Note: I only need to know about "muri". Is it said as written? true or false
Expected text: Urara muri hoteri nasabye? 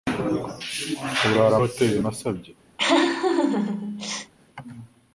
false